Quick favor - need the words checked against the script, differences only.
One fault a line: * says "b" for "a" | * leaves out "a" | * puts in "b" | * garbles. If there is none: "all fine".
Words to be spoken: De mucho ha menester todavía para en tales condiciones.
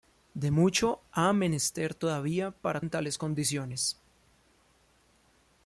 all fine